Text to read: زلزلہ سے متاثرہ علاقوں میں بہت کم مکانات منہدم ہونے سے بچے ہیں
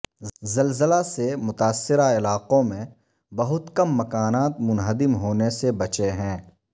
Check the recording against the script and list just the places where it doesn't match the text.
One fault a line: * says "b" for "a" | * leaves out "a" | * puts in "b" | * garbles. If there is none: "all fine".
all fine